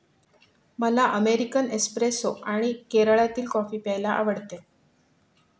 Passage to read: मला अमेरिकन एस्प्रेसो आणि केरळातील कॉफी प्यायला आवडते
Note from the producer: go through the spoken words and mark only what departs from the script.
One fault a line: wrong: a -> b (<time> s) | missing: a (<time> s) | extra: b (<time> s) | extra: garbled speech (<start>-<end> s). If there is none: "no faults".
no faults